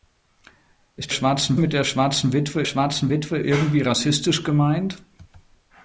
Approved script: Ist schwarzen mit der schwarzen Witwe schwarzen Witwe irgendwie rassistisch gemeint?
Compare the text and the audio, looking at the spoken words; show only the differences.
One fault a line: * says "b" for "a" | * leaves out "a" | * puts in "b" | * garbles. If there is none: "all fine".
all fine